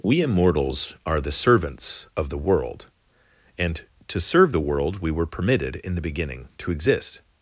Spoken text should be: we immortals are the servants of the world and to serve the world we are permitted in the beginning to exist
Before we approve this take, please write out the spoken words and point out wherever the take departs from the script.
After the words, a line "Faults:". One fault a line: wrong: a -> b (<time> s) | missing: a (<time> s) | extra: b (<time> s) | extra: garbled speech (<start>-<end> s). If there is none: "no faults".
we immortals are the servants of the world and to serve the world we were permitted in the beginning to exist
Faults:
wrong: are -> were (5.1 s)